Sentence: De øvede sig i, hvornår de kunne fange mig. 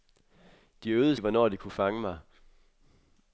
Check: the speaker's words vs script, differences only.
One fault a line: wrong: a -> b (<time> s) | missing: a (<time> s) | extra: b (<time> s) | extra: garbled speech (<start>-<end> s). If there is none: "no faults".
missing: sig (1.1 s)